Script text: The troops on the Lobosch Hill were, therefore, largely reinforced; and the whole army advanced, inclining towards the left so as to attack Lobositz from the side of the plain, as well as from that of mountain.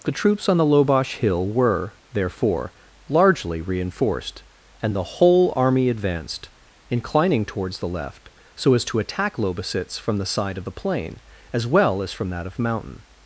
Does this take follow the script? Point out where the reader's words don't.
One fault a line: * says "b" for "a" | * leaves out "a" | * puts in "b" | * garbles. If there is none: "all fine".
all fine